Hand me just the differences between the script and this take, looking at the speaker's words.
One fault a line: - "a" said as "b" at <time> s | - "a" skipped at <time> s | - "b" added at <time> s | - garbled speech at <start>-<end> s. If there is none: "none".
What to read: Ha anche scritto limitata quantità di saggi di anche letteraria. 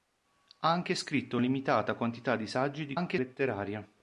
none